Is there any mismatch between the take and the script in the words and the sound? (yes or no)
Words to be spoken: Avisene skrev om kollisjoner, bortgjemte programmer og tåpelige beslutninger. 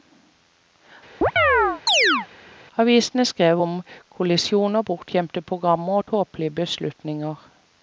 yes